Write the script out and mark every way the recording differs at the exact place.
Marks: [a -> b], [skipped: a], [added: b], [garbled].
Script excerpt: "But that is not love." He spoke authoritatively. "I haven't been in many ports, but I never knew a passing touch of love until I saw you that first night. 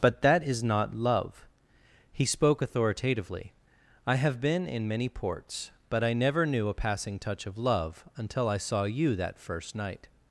"But that is not love." He spoke authoritatively. "I [haven't -> have] been in many ports, but I never knew a passing touch of love until I saw you that first night.